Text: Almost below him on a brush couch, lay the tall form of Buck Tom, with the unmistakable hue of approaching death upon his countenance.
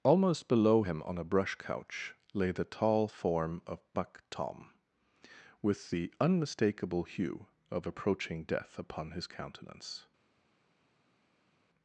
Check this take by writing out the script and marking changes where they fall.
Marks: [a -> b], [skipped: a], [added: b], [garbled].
Almost below him on a brush couch, lay the tall form of Buck Tom, with the unmistakable hue of approaching death upon his countenance.